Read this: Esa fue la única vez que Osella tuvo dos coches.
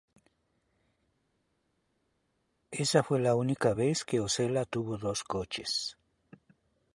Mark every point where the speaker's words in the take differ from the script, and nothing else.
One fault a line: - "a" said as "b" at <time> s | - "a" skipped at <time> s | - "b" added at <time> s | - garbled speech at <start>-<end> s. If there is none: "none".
none